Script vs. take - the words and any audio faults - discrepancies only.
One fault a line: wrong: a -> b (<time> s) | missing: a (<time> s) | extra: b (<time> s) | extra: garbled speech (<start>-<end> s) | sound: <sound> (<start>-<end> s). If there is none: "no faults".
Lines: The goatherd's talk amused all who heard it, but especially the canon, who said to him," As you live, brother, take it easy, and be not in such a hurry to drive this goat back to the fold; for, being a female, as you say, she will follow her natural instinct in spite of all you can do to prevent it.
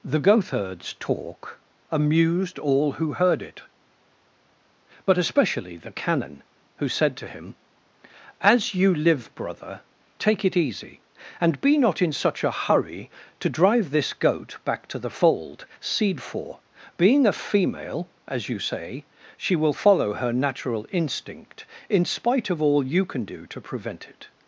extra: seed (15.8 s)